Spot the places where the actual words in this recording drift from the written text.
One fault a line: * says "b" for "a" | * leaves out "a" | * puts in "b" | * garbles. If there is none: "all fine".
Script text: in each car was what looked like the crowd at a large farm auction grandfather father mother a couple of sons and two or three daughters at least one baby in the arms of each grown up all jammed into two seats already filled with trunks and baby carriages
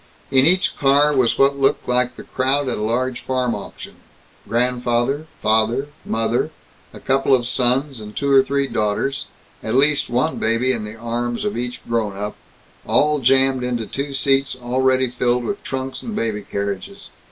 all fine